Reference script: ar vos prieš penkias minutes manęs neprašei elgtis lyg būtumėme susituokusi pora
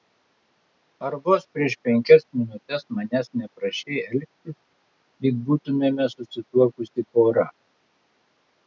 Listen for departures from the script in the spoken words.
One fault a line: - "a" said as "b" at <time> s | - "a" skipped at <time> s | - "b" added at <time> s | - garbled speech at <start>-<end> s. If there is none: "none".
none